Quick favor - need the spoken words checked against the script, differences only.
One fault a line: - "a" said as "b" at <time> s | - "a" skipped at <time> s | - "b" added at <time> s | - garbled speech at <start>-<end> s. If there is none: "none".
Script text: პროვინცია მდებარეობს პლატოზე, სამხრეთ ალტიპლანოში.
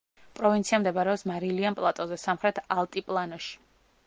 - "მარილიან" added at 1.3 s